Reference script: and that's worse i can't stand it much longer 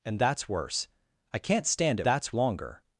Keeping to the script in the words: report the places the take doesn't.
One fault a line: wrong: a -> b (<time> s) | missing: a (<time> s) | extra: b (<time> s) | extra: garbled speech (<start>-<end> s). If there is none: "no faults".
wrong: much -> that's (2.0 s)